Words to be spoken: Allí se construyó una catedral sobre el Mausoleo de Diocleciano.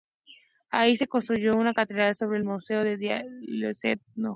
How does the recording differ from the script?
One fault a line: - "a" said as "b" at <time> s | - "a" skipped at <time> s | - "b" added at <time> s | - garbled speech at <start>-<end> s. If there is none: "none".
none